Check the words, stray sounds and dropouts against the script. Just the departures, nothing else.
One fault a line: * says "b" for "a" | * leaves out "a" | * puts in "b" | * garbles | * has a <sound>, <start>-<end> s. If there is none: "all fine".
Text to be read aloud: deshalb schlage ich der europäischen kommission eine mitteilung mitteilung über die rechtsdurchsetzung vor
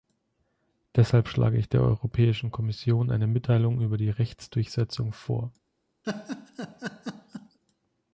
* leaves out "mitteilung"
* has a laugh, 6.0-7.6 s